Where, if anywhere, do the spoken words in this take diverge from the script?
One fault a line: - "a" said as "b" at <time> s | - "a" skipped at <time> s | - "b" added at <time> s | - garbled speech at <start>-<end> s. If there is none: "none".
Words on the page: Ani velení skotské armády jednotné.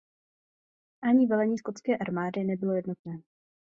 - "nebylo" added at 2.4 s